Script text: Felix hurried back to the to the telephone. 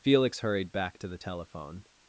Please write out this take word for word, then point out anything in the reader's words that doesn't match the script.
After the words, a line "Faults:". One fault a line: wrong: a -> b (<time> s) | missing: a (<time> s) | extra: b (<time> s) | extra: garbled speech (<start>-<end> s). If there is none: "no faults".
Felix hurried back to the telephone.
Faults:
missing: to the (1.2 s)